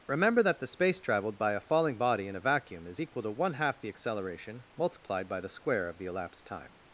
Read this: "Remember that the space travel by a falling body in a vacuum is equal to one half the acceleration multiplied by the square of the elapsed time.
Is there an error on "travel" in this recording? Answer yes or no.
yes